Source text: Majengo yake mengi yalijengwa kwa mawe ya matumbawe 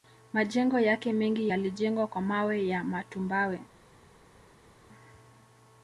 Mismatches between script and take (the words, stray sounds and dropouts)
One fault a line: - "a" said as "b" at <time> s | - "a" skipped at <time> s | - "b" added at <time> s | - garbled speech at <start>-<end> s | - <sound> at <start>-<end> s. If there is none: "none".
none